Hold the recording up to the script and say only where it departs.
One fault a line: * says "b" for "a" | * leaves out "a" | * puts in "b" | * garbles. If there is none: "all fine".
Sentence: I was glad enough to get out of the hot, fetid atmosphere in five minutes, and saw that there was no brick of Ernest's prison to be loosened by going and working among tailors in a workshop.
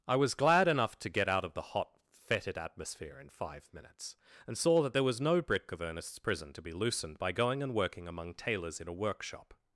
all fine